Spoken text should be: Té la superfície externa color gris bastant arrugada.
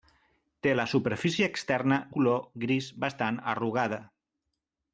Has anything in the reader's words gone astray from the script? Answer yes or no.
no